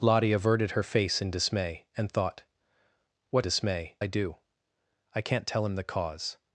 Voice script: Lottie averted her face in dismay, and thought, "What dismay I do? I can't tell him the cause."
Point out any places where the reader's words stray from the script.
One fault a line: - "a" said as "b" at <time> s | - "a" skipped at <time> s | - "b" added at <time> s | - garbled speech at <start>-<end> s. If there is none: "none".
none